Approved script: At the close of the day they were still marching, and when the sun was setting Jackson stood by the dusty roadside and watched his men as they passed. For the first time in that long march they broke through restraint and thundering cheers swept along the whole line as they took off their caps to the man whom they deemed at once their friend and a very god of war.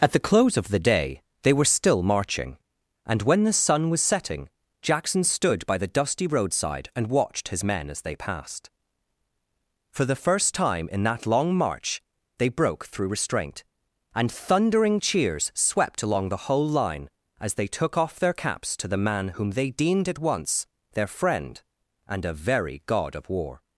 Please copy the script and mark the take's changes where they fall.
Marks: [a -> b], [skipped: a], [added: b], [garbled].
At the close of the day they were still marching, and when the sun was setting Jackson stood by the dusty roadside and watched his men as they passed. For the first time in that long march they broke through restraint and thundering cheers swept along the whole line as they took off their caps to the man whom they deemed at once their friend and a very god of war.